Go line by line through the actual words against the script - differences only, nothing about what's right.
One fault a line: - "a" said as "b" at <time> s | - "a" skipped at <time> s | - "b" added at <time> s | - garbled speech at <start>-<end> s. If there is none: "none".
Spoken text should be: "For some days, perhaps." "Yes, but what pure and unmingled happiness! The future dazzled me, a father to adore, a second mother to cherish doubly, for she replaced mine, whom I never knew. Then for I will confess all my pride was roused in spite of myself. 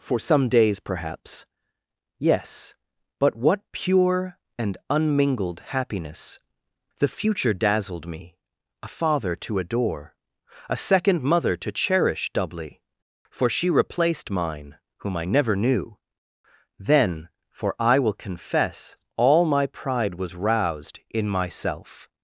- "spite of" skipped at 21.3 s